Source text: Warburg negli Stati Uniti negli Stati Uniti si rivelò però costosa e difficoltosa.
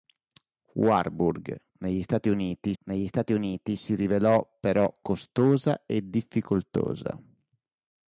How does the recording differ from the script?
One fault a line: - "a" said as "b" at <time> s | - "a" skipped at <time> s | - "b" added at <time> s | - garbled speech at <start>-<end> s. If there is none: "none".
none